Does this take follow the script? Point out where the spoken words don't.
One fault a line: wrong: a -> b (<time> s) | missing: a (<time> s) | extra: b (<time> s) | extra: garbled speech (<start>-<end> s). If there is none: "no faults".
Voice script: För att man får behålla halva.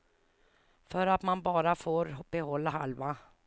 extra: bara (1.4 s)